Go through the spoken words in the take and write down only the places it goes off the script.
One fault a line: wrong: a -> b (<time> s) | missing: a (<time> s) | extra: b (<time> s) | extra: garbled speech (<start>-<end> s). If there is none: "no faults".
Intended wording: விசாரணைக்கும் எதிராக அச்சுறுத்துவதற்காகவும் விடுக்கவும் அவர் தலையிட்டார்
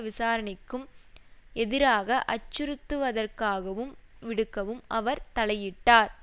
no faults